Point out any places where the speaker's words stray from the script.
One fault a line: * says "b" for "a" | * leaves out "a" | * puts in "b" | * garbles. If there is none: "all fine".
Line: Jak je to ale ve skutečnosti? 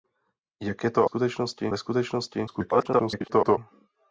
* says "skutečnosti" for "ale"
* garbles